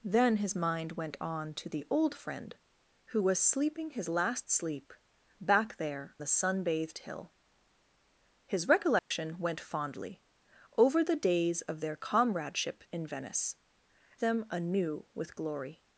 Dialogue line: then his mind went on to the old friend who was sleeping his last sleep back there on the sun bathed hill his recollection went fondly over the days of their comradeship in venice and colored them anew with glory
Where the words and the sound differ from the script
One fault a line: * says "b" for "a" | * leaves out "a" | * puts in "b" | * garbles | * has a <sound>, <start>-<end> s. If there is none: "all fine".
* leaves out "on"
* has a dropout, 9.0-9.1 s
* leaves out "and colored"